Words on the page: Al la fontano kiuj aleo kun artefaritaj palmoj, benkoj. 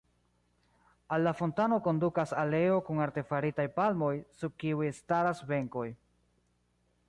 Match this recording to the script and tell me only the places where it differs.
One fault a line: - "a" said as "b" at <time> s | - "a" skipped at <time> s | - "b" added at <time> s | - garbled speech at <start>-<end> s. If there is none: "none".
- "kiuj" said as "kondukas" at 1.9 s
- "sub kiuj staras" added at 4.4 s